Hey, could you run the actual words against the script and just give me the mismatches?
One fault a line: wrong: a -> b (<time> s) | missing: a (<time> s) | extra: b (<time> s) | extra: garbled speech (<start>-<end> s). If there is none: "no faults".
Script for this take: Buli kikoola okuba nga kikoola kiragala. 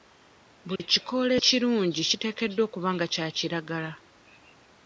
extra: ekirungi kiteekeddwa (1.4 s)
wrong: kikoola -> kya (3.1 s)